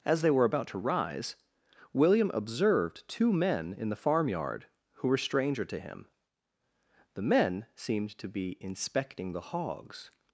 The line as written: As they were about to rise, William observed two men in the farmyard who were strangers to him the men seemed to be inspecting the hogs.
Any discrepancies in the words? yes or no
yes